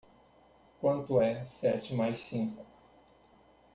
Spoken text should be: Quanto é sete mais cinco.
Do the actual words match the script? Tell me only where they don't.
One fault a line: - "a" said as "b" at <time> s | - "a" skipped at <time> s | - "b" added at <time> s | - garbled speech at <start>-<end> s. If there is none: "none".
none